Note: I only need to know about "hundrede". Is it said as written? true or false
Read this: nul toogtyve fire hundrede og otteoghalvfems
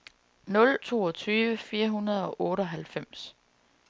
true